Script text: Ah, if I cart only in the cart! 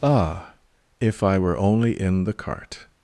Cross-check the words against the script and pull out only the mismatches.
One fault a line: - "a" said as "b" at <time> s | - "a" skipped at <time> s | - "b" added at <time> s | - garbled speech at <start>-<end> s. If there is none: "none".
- "cart" said as "were" at 1.4 s